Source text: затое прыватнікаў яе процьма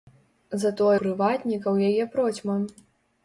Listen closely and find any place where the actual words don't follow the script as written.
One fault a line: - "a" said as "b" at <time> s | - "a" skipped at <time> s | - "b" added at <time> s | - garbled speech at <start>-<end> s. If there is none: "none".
none